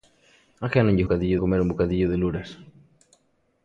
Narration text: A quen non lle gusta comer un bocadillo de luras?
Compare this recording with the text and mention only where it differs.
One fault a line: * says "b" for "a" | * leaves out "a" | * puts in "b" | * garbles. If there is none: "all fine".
* says "bocadillo" for "gusta"